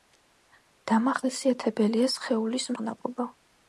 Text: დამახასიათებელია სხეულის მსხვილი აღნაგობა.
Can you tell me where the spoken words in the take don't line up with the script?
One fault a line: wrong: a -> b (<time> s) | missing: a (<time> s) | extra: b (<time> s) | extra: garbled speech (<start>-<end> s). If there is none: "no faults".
missing: მსხვილი (2.7 s)